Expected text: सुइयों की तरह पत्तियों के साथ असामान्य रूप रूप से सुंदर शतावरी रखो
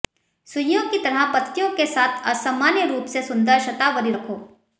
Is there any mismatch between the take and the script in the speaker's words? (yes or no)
yes